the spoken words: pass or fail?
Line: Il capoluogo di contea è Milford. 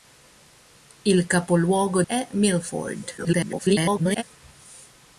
fail